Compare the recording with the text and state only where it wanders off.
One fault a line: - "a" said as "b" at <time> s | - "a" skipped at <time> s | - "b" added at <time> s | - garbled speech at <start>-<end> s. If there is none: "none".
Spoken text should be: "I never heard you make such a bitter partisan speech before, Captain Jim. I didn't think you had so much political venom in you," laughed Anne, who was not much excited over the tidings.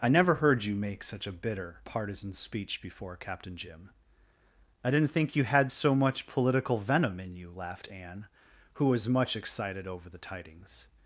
- "not" skipped at 9.1 s